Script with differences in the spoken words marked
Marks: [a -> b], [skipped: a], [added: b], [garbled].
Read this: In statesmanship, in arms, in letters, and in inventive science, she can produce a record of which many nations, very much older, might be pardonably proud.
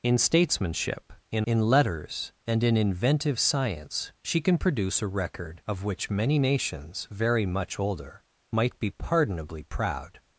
In statesmanship, in [skipped: arms,] in letters, and in inventive science, she can produce a record of which many nations, very much older, might be pardonably proud.